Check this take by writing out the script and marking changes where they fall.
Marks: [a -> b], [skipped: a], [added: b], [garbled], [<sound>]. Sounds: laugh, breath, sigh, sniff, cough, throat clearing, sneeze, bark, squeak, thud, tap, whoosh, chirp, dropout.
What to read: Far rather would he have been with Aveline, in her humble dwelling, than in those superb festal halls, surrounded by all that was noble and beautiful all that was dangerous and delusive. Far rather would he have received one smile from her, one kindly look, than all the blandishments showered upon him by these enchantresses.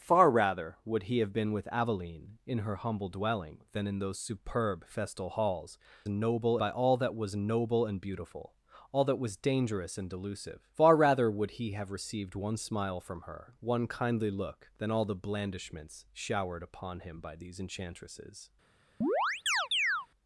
Far rather would he have been with Aveline, in her humble dwelling, than in those superb festal halls, [surrounded -> noble] by all that was noble and beautiful all that was dangerous and delusive. Far rather would he have received one smile from her, one kindly look, than all the blandishments showered upon him by these enchantresses. [chirp]